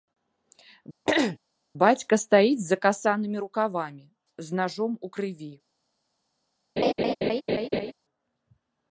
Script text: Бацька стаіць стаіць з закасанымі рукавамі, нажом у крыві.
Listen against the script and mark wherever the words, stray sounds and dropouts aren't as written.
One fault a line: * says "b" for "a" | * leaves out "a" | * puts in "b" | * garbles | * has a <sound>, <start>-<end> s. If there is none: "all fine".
* has a throat clearing, 1.1-1.4 s
* leaves out "стаіць"
* puts in "з"
* has a laugh, 6.8-7.9 s